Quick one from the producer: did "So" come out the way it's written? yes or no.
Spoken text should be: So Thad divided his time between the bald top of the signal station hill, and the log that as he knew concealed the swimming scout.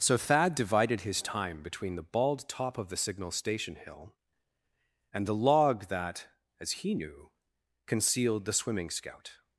yes